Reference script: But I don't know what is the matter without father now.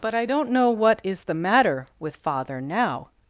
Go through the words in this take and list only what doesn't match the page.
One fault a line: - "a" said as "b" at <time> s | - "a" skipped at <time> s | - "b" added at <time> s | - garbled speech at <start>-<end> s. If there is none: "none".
- "without" said as "with" at 2.0 s